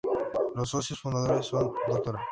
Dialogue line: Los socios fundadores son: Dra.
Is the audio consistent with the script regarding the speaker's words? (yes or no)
yes